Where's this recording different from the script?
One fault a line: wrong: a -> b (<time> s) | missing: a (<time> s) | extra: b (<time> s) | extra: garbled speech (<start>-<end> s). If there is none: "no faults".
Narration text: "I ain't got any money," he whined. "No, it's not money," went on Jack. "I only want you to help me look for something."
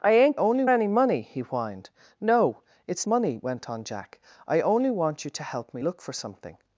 wrong: got -> only (0.3 s)
missing: not (3.1 s)